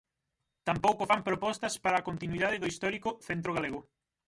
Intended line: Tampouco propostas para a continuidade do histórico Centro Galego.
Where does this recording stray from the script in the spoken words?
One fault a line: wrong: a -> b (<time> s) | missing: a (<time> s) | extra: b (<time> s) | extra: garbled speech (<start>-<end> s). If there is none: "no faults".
extra: fan (1.1 s)